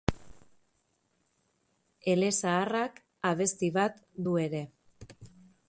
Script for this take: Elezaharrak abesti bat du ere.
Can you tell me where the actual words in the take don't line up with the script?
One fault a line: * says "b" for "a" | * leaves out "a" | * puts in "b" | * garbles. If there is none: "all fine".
all fine